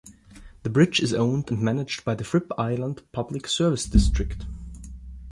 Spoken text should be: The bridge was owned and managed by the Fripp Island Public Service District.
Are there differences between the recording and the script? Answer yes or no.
yes